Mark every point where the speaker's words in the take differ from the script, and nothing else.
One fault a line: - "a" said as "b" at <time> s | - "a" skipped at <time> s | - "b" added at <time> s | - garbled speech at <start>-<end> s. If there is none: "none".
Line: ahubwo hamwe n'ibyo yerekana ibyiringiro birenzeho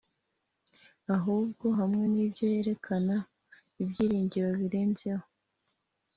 none